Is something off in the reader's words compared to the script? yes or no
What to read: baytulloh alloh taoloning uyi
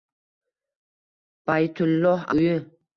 yes